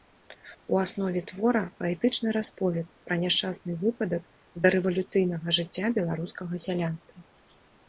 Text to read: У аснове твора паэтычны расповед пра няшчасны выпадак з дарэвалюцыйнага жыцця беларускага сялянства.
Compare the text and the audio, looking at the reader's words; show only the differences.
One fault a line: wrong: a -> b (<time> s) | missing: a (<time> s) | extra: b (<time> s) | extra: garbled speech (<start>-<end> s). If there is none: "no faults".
no faults